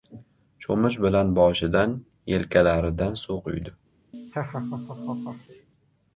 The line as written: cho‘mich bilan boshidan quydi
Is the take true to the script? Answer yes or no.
no